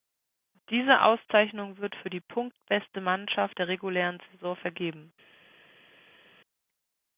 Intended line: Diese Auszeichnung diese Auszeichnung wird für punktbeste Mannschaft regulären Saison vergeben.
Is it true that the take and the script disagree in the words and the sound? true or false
true